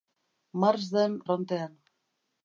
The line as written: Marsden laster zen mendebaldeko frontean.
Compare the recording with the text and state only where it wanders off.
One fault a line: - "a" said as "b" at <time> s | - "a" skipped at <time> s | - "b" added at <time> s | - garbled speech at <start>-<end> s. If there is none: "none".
- "laster zen mendebaldeko" skipped at 1.2 s